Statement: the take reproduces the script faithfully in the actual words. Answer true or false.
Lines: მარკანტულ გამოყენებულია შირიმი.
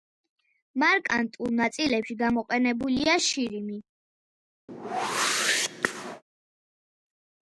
false